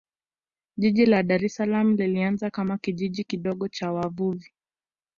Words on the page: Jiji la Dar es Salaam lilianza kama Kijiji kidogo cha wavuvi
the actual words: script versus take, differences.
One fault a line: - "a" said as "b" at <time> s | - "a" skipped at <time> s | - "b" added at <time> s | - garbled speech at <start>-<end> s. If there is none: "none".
none